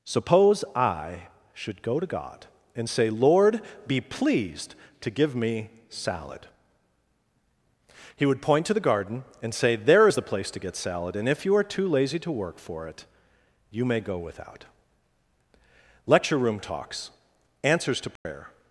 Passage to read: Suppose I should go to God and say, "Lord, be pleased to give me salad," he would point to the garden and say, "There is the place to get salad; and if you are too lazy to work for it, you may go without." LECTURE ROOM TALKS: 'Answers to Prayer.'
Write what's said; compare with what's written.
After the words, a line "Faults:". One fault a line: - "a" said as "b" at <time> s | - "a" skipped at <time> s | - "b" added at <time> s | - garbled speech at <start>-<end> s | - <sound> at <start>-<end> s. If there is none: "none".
Suppose I should go to God and say, "Lord, be pleased to give me salad," he would point to the garden and say, "There is the place to get salad; and if you are too lazy to work for it, you may go without." LECTURE ROOM TALKS: 'Answers to Prayer.'
Faults:
- dropout at 18.2-18.3 s